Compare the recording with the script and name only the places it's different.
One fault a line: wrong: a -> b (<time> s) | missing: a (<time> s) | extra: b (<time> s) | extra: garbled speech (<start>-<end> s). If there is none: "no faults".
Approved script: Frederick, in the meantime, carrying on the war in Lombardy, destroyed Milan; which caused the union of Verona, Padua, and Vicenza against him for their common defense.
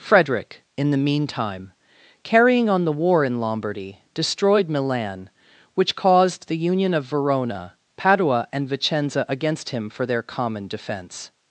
no faults